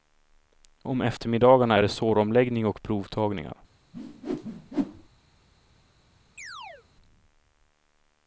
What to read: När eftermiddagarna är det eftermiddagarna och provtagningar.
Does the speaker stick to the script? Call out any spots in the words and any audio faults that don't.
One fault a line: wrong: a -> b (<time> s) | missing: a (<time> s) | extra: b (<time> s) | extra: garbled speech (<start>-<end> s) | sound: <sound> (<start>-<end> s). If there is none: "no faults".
wrong: När -> Om (0.8 s)
wrong: eftermiddagarna -> såromläggning (1.9 s)
sound: whoosh (3.9-5.1 s)
sound: chirp (6.4-6.9 s)